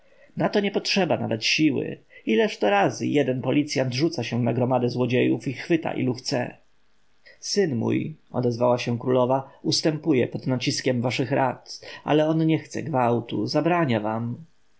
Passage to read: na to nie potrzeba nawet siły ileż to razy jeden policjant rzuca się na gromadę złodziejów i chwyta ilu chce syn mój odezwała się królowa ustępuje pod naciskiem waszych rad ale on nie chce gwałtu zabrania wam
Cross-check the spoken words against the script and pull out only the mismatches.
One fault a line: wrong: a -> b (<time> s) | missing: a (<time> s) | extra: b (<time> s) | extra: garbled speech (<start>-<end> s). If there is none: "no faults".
no faults